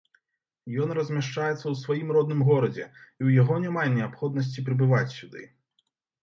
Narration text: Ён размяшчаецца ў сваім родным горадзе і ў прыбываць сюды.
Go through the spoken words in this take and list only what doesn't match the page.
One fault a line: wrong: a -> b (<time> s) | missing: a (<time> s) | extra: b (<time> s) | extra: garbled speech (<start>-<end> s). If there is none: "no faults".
extra: яго няма неабходнасці (3.4 s)